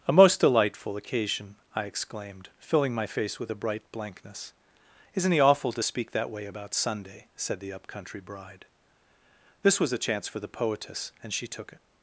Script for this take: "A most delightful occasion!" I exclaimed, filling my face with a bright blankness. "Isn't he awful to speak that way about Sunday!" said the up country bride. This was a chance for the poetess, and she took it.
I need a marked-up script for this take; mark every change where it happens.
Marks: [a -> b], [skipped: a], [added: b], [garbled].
"A most delightful occasion!" I exclaimed, filling my face with a bright blankness. "Isn't he awful to speak that way about Sunday!" said the up country bride. This was a chance for the poetess, and she took it.